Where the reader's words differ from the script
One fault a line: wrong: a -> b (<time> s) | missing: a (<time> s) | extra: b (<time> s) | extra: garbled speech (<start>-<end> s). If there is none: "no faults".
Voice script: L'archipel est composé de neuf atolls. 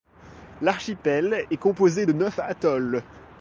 no faults